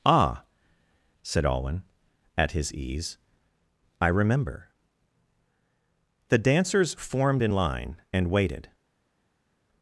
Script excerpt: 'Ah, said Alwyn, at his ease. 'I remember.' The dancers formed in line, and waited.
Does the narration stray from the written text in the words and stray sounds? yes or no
no